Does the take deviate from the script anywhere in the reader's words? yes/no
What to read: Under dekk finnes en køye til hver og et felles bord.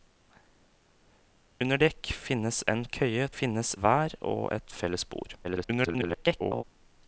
yes